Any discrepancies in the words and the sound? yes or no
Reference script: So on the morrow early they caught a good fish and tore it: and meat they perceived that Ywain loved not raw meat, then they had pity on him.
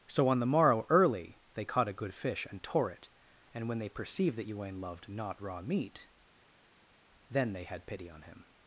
yes